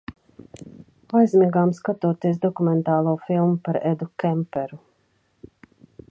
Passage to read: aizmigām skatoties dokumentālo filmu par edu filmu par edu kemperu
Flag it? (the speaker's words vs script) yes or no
yes